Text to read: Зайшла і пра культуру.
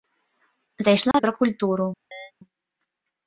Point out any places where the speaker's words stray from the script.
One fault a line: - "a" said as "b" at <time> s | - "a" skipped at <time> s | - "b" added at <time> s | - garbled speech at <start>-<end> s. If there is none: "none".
none